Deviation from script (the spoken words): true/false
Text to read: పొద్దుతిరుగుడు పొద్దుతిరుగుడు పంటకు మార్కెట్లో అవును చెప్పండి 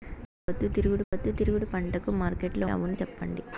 false